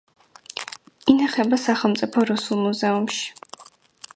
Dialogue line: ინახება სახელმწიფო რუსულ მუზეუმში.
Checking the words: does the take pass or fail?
pass